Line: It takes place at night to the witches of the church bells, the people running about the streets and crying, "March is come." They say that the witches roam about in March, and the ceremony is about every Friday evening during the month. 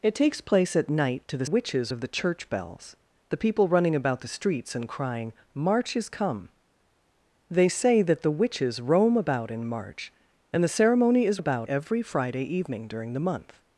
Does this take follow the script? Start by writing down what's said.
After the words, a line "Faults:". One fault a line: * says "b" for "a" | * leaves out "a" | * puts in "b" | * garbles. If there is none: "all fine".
It takes place at night to the witches of the church bells, the people running about the streets and crying, "March is come." They say that the witches roam about in March, and the ceremony is about every Friday evening during the month.
Faults:
all fine